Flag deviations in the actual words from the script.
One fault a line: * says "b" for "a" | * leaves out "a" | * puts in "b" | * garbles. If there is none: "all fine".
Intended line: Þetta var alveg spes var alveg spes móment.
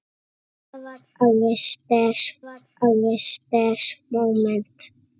all fine